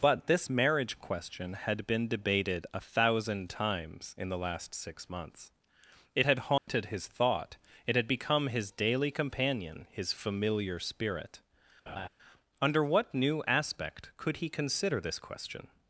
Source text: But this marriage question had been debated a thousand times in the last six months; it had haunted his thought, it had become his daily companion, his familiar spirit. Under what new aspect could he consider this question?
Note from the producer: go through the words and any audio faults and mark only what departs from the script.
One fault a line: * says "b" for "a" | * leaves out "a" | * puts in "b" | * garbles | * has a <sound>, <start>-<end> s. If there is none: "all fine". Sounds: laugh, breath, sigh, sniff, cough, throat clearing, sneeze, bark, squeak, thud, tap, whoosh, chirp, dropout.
* has a dropout, 6.6-6.7 s
* has a laugh, 11.9-12.1 s